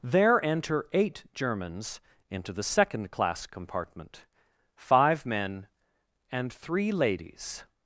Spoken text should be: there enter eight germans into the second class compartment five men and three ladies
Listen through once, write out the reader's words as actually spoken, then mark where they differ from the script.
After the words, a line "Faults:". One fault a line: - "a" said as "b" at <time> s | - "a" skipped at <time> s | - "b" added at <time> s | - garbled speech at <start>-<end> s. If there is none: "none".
there enter eight germans into the second class compartment five men and three ladies
Faults:
none